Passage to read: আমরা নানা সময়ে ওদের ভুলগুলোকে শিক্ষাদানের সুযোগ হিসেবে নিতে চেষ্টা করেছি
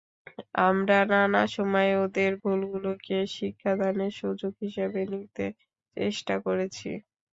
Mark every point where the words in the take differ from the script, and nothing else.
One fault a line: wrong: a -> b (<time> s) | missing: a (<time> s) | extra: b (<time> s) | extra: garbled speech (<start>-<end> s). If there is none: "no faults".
no faults